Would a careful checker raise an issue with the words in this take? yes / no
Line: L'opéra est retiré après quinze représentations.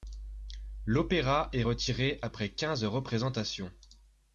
no